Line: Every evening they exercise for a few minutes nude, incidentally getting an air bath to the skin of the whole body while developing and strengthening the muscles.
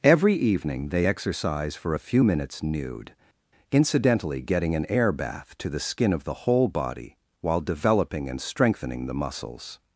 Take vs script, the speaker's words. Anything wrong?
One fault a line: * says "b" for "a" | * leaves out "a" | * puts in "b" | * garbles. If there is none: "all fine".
all fine